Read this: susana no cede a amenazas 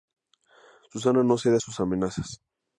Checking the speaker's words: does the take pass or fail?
fail